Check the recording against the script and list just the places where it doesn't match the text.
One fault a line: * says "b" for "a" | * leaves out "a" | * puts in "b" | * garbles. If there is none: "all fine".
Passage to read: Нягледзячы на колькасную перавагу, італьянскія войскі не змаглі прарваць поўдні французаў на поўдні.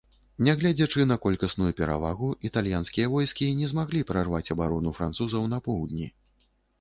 * says "абарону" for "поўдні"